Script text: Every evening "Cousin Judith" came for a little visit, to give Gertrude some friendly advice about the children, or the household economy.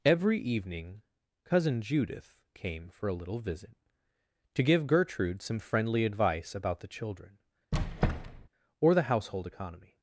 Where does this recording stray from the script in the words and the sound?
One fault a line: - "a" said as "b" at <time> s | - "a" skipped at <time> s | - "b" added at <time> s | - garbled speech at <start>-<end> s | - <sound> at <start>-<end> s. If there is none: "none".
- squeak at 7.7-8.5 s